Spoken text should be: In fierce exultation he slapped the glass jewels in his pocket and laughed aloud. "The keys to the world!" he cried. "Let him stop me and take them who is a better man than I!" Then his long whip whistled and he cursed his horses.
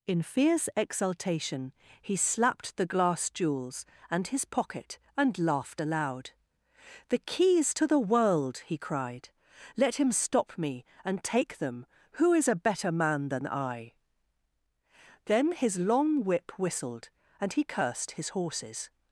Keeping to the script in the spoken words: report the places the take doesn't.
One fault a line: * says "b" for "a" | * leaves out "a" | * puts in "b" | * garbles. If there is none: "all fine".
* says "and" for "in"